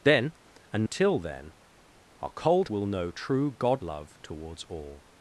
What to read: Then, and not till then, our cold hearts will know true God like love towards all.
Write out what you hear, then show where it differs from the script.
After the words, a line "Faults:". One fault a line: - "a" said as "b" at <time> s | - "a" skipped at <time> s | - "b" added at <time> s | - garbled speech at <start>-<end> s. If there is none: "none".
Then, and till then, our cold will know true God love towards all.
Faults:
- "not" skipped at 0.8 s
- "hearts" skipped at 2.7 s
- "like" skipped at 3.8 s